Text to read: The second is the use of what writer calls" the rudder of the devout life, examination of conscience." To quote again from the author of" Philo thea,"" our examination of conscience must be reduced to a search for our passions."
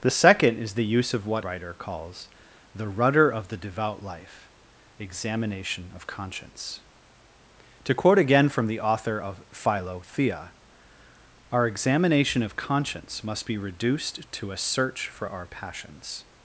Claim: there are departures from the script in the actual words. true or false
false